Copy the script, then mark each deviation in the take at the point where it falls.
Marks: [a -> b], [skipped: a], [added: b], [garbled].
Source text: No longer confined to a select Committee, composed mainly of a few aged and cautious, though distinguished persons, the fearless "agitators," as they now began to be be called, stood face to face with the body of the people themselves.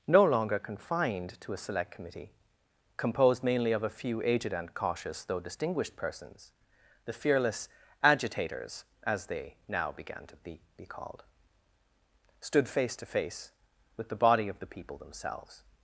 No longer confined to a select Committee, composed mainly of a few aged and cautious, though distinguished persons, the fearless "agitators," as they now began to be be called, stood face to face with the body of the people themselves.